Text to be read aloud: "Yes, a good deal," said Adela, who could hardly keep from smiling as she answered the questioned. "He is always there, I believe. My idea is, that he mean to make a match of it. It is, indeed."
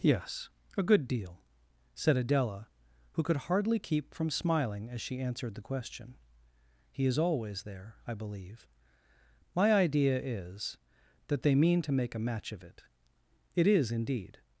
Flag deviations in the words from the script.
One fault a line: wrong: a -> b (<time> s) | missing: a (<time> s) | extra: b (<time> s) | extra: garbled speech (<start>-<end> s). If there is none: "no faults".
wrong: questioned -> question (5.6 s)
wrong: he -> they (11.4 s)